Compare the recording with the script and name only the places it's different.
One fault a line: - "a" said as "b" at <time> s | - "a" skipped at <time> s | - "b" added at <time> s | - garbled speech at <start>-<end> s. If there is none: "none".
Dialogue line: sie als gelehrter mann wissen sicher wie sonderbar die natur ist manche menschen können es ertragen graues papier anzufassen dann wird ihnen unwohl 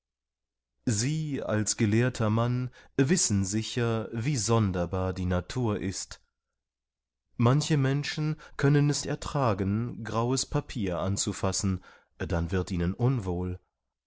none